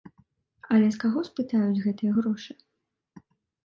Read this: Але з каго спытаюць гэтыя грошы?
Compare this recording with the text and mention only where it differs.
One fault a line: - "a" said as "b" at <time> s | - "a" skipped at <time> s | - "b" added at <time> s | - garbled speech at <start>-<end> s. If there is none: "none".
none